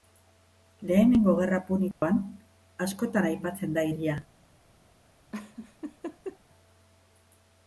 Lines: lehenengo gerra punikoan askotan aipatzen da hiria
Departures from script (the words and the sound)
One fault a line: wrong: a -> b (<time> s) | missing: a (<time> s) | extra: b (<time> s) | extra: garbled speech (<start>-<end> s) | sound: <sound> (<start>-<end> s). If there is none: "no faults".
sound: dropout (1.9-2.0 s)
sound: laugh (5.3-6.4 s)